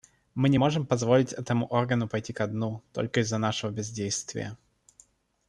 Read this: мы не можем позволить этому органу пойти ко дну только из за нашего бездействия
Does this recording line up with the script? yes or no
yes